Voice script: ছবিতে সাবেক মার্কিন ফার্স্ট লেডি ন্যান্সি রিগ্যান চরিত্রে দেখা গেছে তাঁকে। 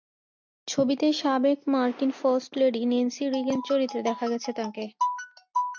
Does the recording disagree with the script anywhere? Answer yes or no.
no